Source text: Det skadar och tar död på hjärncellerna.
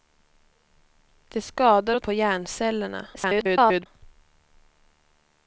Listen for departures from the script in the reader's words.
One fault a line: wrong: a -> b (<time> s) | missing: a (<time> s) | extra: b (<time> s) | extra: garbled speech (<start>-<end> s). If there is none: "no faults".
missing: tar död (2.0 s)
extra: garbled speech (3.1-3.9 s)